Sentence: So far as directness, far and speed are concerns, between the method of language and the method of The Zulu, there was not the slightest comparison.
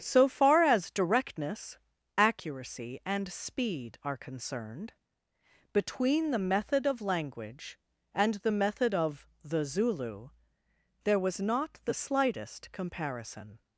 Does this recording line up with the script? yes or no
no